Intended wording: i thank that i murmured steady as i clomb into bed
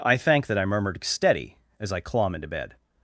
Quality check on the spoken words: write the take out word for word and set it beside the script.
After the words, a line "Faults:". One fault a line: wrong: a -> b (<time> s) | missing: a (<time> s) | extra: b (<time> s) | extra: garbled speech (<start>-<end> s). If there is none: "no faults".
i thank that i murmured steady as i clomb into bed
Faults:
no faults